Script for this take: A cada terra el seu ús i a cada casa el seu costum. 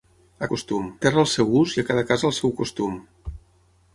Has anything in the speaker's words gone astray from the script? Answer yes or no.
yes